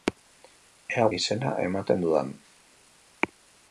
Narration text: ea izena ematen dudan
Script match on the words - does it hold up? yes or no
yes